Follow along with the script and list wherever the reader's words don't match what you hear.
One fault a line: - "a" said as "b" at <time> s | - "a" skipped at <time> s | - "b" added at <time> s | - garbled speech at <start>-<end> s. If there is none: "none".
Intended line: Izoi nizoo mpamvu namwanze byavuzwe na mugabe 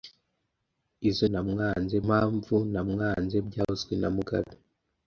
- "nizoo" said as "namwanze" at 1.3 s